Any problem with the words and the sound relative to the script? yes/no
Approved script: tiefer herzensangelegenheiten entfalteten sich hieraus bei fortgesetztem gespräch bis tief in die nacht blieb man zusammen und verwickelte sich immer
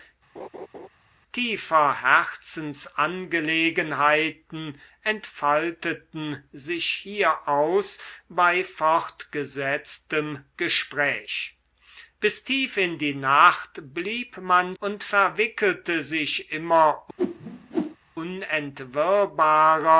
yes